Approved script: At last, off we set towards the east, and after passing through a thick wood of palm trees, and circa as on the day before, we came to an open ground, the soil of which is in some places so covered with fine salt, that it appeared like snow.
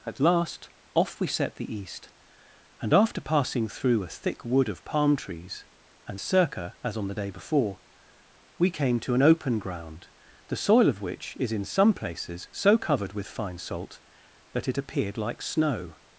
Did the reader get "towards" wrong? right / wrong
wrong